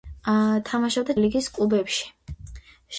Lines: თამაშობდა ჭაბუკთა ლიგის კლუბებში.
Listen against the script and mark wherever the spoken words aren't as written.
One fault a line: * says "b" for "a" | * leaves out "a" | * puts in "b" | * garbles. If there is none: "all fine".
* leaves out "ჭაბუკთა"